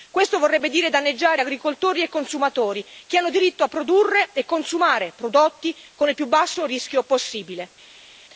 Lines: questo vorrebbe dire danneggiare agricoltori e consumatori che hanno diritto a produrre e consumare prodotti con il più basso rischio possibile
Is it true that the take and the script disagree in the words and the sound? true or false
false